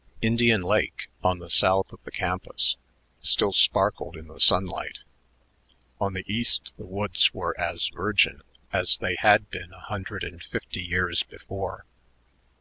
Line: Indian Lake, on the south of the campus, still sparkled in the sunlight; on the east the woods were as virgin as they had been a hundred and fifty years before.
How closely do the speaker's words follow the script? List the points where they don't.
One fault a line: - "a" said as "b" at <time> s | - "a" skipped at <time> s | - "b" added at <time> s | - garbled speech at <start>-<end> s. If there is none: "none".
none